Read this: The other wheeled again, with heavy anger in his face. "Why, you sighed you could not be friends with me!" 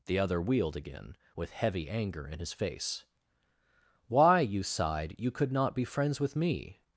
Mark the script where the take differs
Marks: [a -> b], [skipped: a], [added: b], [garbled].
The other wheeled again, with heavy anger in his face. "Why, you sighed you could not be friends with me!"